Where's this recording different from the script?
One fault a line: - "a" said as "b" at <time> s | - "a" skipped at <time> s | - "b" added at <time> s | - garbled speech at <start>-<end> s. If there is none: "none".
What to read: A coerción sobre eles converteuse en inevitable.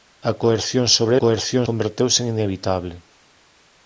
- "eles" said as "coerción" at 1.2 s